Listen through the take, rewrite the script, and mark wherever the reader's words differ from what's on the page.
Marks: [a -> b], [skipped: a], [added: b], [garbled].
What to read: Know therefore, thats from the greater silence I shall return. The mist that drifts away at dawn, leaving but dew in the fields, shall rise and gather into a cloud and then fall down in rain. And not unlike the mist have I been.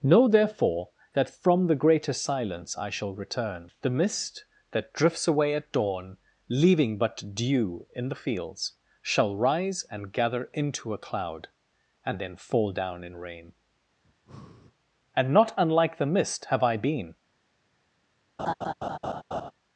Know therefore, [thats -> that] from the greater silence I shall return. The mist that drifts away at dawn, leaving but dew in the fields, shall rise and gather into a cloud and then fall down in rain. And not unlike the mist have I been.